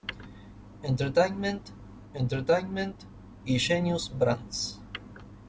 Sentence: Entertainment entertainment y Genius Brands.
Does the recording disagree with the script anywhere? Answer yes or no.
no